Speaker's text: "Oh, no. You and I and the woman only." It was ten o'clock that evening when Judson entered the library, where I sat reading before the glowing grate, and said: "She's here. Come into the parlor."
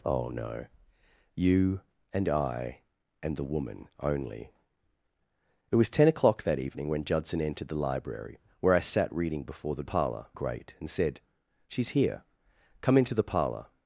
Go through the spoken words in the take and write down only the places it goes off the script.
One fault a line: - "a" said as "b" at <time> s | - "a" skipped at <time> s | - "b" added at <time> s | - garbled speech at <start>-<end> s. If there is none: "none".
- "glowing" said as "parlor" at 9.8 s